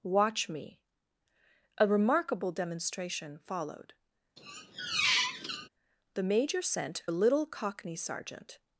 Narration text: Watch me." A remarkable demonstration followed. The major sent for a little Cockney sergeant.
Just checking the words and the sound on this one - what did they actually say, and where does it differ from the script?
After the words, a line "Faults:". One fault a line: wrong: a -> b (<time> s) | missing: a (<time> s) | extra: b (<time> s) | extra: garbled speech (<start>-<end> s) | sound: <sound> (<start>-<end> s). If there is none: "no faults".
Watch me." A remarkable demonstration followed. The major sent a little Cockney sergeant.
Faults:
sound: squeak (4.4-5.7 s)
missing: for (7.0 s)